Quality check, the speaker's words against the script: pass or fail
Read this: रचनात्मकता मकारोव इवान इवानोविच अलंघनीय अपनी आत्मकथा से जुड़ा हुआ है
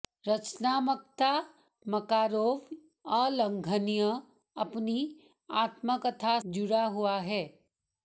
fail